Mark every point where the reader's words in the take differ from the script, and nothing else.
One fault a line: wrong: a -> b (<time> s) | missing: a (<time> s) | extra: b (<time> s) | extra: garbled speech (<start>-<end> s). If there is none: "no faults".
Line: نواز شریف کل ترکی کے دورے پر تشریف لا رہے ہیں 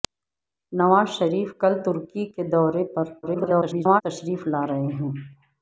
extra: garbled speech (3.2-4.0 s)